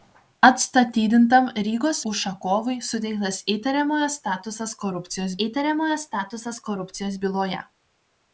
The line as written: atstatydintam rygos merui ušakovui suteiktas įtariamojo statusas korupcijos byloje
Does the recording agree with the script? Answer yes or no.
no